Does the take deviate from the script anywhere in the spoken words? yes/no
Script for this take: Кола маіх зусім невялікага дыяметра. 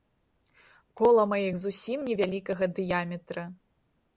no